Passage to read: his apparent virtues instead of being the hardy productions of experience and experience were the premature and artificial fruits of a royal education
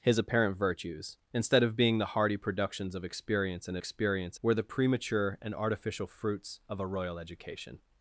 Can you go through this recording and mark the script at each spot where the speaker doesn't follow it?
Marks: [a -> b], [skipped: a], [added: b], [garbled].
his apparent virtues instead of being the hardy productions of experience and experience were the premature and artificial fruits of a royal education